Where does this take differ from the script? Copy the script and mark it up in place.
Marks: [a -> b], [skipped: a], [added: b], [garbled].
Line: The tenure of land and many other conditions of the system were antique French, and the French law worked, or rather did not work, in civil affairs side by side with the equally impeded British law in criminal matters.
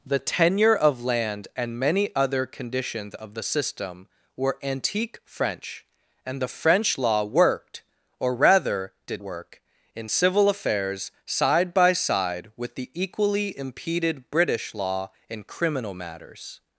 The tenure of land and many other conditions of the system were antique French, and the French law worked, or rather did [skipped: not] work, in civil affairs side by side with the equally impeded British law in criminal matters.